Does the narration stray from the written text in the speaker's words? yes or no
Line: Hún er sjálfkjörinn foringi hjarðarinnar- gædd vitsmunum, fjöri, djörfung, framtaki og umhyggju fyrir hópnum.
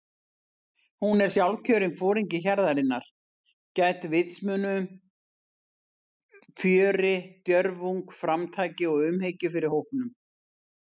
no